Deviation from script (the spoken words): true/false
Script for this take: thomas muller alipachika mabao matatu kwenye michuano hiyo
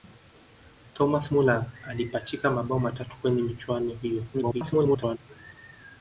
true